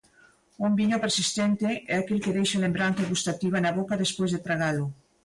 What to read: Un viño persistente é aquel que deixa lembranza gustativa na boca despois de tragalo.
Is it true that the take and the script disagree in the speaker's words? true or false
false